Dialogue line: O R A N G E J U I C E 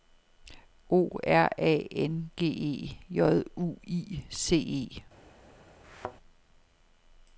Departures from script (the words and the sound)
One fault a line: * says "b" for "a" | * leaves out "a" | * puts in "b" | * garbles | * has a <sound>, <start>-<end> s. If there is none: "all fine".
* has a thud, 5.8-6.2 s